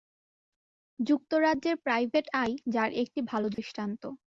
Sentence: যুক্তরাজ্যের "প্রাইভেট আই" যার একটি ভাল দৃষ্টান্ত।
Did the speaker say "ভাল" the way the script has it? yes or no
yes